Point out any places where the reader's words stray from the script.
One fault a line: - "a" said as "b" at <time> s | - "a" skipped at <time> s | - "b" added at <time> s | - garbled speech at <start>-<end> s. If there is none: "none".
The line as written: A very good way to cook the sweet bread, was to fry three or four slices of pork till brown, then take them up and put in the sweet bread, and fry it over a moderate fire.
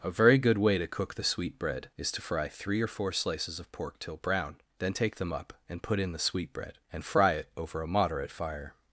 - "was" said as "is" at 1.9 s